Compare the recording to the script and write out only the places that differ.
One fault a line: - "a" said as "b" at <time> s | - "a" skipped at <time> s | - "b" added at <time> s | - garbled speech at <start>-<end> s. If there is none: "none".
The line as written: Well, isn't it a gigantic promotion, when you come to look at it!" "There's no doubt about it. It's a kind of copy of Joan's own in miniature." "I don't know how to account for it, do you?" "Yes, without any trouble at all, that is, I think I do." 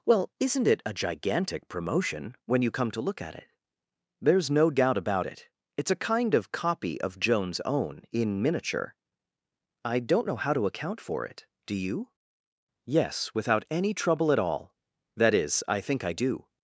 none